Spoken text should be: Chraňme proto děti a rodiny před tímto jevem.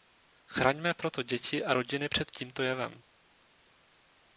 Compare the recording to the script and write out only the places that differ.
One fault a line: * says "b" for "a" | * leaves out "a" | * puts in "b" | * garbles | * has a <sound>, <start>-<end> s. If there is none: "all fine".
all fine